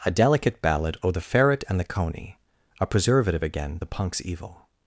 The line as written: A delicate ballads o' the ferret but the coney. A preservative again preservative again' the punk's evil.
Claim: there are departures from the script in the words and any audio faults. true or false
true